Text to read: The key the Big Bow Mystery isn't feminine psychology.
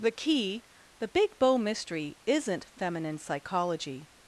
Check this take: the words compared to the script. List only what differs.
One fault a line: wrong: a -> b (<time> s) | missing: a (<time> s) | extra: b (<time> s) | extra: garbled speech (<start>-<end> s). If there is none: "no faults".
no faults